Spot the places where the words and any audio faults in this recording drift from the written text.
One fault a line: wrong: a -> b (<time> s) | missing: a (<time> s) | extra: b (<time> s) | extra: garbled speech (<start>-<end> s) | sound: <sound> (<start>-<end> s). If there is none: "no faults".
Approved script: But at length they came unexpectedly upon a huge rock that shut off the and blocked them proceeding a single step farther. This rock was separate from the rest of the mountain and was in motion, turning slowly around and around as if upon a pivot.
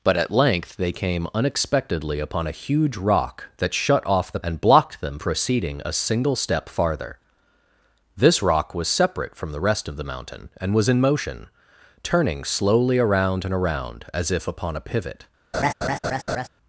sound: laugh (15.5-16.5 s)